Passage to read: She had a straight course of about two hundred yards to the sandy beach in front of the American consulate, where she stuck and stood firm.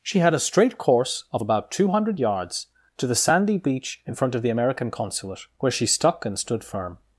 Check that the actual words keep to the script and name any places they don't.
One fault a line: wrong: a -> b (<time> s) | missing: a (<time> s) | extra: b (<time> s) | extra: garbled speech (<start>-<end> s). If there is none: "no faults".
no faults